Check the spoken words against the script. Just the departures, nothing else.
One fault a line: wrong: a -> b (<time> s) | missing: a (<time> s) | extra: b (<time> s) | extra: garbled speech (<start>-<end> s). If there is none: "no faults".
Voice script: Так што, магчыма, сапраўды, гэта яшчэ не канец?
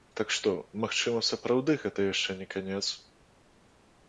no faults